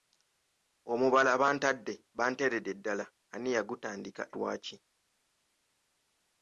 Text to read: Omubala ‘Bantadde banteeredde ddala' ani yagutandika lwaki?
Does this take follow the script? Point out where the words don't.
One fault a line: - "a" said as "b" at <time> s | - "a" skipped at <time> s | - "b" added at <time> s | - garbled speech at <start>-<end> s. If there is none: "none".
none